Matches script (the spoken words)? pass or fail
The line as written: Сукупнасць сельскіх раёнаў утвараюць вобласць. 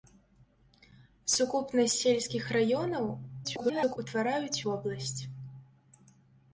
fail